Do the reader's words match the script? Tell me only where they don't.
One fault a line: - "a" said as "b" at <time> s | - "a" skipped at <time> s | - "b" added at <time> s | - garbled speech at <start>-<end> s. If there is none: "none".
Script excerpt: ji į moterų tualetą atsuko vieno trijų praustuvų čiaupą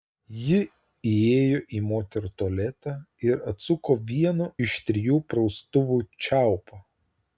- "įėjo" added at 1.1 s
- "ir" added at 3.3 s
- "iš" added at 4.7 s